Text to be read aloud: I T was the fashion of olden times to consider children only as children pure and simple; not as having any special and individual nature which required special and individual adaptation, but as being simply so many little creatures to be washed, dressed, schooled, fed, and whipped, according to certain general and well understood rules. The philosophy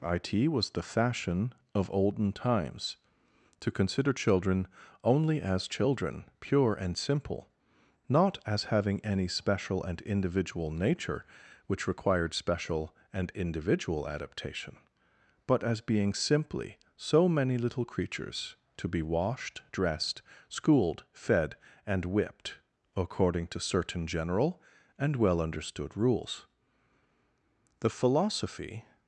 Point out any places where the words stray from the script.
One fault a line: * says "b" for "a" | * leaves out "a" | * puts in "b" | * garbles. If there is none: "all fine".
all fine